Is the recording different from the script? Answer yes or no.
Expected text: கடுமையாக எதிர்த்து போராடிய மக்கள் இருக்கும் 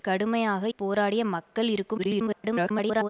yes